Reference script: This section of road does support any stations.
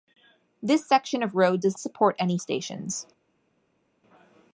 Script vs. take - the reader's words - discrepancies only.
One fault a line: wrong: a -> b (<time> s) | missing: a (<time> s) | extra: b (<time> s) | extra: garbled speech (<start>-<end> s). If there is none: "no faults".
no faults